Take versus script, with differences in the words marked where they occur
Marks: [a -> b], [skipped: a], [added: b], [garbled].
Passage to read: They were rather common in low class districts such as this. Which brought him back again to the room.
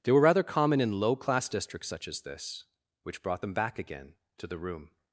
They were rather common in low class districts such as this. Which brought [him -> them] back again to the room.